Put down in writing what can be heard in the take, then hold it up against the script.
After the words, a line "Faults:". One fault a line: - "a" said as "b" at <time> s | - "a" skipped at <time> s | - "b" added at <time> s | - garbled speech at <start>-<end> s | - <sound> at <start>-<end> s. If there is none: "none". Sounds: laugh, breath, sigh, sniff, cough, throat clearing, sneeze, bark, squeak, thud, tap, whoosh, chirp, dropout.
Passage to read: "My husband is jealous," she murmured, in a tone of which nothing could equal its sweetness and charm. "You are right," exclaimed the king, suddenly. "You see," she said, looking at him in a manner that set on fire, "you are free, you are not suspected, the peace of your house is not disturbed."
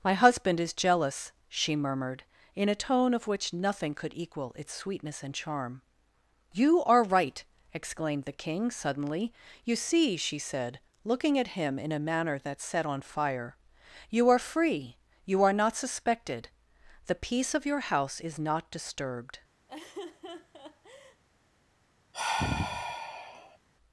"My husband is jealous," she murmured, in a tone of which nothing could equal its sweetness and charm. "You are right," exclaimed the king, suddenly. "You see," she said, looking at him in a manner that set on fire, "you are free, you are not suspected, the peace of your house is not disturbed."
Faults:
- laugh at 19.7-21.2 s
- sigh at 22.1-23.6 s